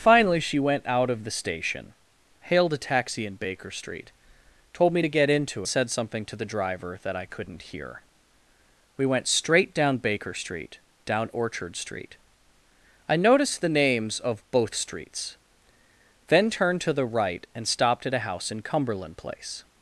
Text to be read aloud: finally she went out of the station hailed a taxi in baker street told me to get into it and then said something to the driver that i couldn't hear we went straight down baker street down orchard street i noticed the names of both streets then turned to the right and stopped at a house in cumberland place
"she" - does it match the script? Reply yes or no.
yes